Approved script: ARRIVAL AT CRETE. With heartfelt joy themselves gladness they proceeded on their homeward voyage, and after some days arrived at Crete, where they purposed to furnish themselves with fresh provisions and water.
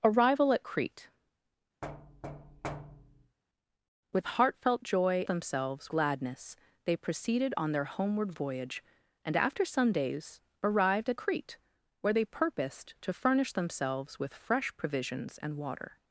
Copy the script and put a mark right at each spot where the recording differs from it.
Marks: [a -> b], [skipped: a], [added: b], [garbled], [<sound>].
ARRIVAL AT CRETE. [thud] With heartfelt joy themselves gladness they proceeded on their homeward voyage, and after some days arrived at Crete, where they purposed to furnish themselves with fresh provisions and water.